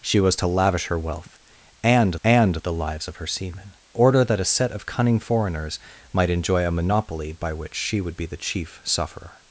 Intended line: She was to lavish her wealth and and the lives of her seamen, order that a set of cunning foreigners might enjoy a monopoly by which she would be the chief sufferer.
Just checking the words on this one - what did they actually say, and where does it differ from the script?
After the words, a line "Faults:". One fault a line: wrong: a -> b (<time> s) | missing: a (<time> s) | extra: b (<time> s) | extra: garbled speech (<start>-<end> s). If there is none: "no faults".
She was to lavish her wealth and and the lives of her seamen, order that a set of cunning foreigners might enjoy a monopoly by which she would be the chief sufferer.
Faults:
no faults